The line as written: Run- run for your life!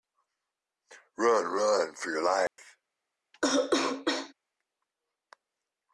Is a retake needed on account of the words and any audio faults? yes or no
yes